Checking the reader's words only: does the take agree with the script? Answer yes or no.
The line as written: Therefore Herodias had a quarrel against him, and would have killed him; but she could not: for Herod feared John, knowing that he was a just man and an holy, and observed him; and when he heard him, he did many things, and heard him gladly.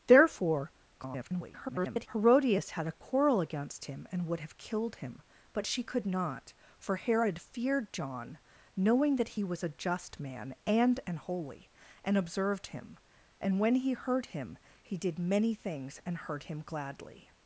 no